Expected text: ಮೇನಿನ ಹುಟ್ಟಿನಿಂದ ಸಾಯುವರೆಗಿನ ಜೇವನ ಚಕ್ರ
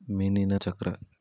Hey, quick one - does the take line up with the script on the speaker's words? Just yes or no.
no